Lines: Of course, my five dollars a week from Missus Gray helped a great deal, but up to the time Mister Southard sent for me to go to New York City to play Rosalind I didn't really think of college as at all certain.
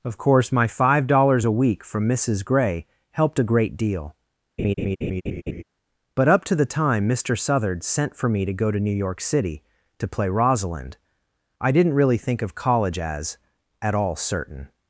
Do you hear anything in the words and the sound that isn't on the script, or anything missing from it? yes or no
yes